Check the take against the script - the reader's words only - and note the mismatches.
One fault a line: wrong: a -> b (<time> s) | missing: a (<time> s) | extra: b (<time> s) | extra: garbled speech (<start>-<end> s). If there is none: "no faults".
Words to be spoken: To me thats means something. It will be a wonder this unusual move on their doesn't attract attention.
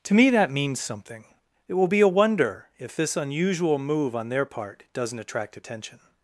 wrong: thats -> that (0.3 s)
extra: if (2.8 s)
extra: part (4.4 s)